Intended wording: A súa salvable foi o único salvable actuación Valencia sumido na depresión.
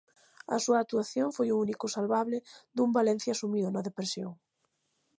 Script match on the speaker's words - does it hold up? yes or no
no